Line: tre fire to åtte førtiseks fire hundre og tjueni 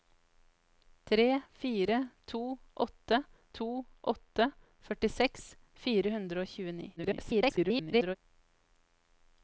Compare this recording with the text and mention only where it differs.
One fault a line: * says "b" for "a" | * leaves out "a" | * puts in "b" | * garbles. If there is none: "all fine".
* puts in "to åtte"
* garbles